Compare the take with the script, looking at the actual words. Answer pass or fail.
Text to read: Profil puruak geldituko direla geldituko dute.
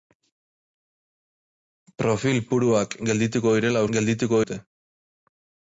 pass